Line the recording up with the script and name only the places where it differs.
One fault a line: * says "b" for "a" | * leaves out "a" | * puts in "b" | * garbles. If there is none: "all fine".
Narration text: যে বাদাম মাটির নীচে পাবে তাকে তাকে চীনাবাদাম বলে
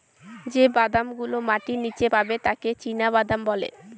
* puts in "গুলো"
* leaves out "তাকে"